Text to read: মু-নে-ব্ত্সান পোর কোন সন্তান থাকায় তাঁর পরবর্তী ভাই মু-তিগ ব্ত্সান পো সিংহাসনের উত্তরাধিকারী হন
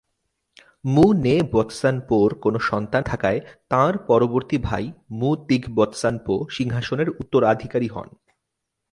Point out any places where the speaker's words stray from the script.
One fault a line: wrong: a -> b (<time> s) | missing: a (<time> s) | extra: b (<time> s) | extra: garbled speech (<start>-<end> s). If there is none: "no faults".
no faults